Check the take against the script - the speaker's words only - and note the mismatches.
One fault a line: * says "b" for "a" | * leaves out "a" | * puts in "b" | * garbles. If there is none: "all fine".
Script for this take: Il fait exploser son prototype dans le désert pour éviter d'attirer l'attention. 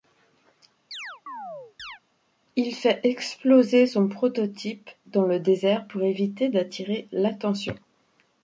all fine